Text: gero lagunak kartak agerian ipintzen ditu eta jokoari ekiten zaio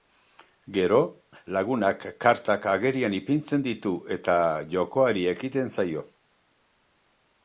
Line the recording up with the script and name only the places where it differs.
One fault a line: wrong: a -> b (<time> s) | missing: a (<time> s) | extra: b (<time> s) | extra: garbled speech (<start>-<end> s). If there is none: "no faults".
no faults